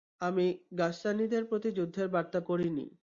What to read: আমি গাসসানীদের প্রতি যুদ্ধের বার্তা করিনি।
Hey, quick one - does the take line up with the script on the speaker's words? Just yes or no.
yes